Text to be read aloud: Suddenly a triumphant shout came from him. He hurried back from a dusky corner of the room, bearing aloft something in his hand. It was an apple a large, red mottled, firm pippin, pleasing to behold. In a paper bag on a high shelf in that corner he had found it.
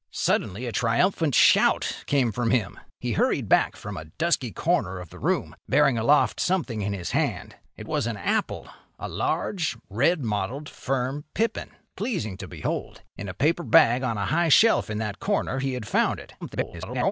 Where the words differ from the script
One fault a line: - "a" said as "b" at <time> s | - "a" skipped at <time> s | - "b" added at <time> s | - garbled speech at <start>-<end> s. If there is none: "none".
- garbled speech at 16.4-17.1 s